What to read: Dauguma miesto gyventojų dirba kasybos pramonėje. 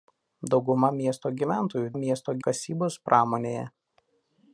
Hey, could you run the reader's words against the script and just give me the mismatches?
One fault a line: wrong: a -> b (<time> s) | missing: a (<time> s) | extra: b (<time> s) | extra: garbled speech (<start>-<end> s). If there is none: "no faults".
wrong: dirba -> miesto (2.0 s)